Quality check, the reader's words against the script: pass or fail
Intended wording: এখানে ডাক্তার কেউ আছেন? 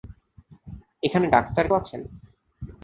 fail